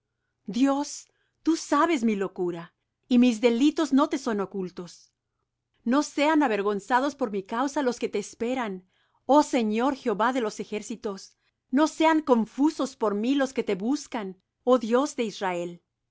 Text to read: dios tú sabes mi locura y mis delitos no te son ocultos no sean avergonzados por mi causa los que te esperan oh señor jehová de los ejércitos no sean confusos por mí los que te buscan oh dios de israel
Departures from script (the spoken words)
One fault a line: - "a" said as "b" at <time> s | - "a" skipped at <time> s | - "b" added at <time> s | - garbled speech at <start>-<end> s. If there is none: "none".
none